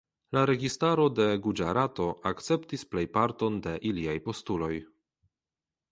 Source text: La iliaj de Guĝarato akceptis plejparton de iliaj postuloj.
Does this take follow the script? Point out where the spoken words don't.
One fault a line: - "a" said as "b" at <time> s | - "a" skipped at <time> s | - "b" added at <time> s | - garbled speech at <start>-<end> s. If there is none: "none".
- "iliaj" said as "registaro" at 0.5 s